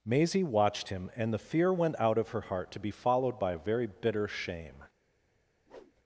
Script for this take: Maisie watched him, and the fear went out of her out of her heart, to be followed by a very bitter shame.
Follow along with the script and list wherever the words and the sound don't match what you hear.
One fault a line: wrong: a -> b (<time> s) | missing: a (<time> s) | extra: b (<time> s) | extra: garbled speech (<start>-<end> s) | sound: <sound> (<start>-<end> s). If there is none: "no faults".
missing: out of her (2.4 s)
sound: whoosh (5.7-5.9 s)